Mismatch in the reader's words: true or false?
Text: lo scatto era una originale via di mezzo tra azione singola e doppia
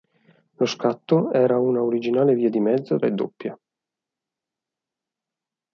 true